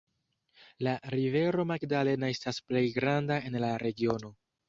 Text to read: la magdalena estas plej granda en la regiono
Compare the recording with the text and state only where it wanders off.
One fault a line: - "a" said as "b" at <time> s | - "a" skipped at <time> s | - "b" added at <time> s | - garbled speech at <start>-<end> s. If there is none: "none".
- "rivero" added at 1.1 s